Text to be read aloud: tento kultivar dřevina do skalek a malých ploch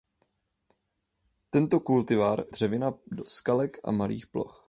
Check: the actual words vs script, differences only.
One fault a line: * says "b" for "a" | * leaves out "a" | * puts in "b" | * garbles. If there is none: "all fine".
all fine